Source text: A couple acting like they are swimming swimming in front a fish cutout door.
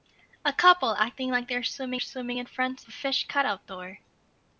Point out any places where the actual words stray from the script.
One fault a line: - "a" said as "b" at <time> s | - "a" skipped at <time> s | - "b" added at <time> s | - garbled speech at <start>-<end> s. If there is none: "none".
none